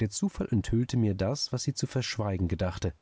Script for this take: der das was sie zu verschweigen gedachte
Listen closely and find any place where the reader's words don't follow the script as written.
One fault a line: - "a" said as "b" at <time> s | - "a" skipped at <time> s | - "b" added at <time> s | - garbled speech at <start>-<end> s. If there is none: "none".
- "zufall enthüllte mir" added at 0.1 s